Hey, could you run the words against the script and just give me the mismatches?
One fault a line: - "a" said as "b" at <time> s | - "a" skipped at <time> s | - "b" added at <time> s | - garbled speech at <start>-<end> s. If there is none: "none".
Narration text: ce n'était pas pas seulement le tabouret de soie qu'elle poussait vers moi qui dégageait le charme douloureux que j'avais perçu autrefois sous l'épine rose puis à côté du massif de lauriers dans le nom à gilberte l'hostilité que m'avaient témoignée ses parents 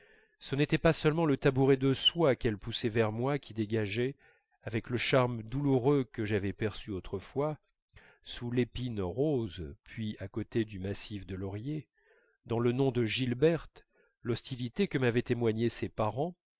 - "pas" skipped at 0.9 s
- "avec" added at 4.6 s
- "à" said as "de" at 12.9 s